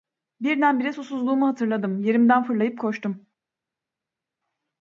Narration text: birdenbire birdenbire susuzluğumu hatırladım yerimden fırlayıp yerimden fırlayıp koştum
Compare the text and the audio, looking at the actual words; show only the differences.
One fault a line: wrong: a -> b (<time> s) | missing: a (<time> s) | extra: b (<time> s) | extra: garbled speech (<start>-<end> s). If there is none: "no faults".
missing: birdenbire (0.9 s)
missing: yerimden fırlayıp (2.8 s)